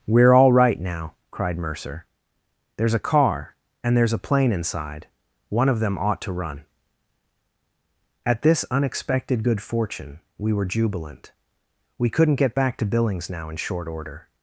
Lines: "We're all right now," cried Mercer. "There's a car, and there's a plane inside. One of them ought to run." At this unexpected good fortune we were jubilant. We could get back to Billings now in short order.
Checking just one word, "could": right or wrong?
wrong